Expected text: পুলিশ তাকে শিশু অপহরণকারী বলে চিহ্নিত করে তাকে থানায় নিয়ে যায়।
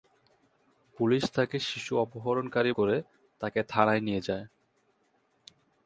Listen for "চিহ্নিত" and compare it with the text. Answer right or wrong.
wrong